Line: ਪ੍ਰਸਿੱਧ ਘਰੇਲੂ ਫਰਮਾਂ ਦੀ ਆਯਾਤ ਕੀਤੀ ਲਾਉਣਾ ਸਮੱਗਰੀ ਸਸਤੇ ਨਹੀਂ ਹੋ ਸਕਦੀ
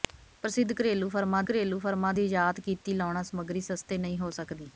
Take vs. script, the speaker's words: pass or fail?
fail